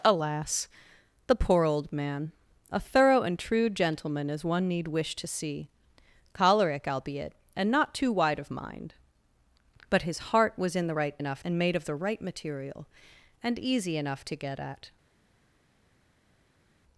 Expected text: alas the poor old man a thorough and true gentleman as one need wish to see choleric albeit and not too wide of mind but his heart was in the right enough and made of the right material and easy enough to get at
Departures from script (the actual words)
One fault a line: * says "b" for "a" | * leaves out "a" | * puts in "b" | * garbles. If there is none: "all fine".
all fine